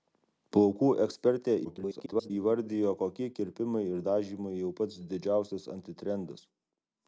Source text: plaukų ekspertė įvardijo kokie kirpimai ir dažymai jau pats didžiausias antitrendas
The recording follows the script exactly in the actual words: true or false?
false